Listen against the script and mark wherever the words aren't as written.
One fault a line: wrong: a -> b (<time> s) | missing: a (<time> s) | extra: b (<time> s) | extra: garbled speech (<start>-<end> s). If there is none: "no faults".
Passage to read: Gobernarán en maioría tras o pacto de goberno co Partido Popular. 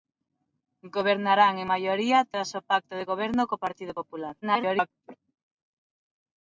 extra: garbled speech (4.4-4.9 s)